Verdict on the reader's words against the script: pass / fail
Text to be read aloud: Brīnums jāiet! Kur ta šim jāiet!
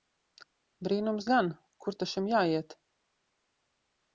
fail